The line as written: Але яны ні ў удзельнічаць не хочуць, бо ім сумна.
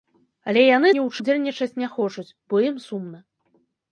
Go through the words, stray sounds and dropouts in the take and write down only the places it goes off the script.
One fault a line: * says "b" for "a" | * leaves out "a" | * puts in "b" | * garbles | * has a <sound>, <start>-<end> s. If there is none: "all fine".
all fine